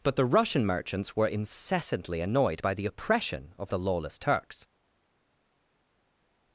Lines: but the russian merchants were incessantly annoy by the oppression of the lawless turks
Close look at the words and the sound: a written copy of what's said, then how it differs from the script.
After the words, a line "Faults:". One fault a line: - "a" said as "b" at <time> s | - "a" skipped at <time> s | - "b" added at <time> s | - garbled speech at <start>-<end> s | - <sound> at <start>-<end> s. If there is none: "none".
but the russian merchants were incessantly annoyed by the oppression of the lawless turks
Faults:
- "annoy" said as "annoyed" at 2.2 s